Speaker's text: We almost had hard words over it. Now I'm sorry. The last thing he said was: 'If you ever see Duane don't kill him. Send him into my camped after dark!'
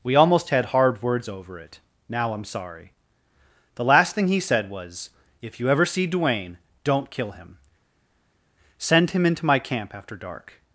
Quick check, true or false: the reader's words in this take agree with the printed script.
false